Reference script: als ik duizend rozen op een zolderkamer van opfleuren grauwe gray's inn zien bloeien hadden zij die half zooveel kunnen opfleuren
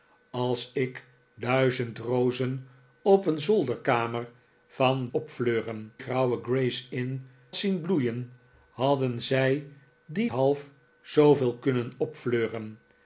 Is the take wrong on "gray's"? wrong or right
right